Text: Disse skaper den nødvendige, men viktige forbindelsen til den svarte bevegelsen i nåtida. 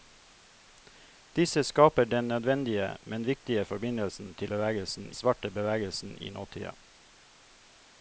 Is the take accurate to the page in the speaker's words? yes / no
no